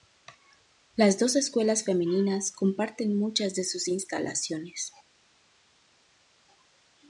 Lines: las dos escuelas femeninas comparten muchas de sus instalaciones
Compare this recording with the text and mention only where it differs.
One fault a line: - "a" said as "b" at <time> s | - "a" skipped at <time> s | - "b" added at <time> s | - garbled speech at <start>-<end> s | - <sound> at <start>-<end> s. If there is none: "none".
none